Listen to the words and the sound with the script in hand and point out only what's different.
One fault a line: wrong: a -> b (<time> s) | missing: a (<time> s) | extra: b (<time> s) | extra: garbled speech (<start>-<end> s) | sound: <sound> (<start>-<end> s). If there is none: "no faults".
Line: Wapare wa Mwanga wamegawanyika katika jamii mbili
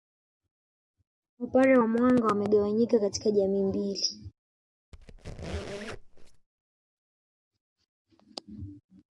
sound: squeak (4.9-6.5 s)